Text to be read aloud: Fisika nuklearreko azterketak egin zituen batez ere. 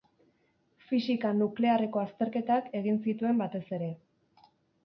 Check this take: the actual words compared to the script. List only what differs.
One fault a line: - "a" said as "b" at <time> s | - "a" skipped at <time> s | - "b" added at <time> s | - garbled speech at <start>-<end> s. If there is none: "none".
none